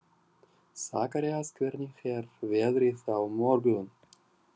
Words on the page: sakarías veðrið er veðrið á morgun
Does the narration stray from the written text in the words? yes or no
yes